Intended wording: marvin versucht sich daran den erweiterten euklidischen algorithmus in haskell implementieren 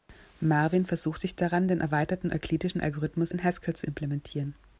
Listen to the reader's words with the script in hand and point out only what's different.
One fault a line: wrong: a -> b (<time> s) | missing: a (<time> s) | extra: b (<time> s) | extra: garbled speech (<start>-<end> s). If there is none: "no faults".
extra: zu (3.8 s)